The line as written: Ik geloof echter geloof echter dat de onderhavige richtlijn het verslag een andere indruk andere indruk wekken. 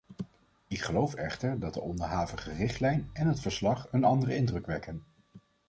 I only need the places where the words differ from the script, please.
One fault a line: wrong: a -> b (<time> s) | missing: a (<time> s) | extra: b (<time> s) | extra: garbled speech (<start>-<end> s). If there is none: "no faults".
missing: geloof echter (1.6 s)
extra: en (3.1 s)
missing: andere indruk (4.7 s)